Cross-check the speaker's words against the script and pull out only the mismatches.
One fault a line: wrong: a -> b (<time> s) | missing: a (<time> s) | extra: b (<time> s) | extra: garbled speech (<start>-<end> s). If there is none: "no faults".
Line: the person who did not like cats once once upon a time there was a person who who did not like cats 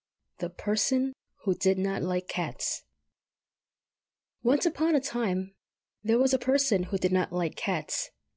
missing: once (4.7 s)
missing: who (7.0 s)